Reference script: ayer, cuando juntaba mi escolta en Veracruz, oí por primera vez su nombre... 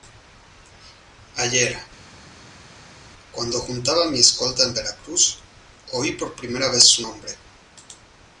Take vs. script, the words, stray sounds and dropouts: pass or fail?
pass